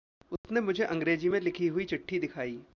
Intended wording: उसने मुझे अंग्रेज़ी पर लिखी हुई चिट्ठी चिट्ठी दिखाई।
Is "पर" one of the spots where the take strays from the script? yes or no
yes